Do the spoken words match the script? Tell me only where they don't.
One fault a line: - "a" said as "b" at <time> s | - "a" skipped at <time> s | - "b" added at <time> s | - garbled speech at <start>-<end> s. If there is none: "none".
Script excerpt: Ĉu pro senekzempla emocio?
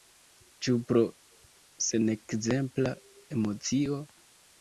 none